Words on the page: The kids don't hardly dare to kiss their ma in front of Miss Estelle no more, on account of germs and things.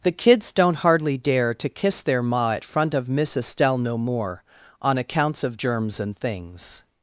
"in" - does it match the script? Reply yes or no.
no